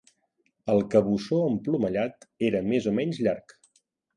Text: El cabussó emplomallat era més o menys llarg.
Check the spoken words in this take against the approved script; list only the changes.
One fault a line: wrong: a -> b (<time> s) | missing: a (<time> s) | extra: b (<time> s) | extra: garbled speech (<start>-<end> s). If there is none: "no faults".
no faults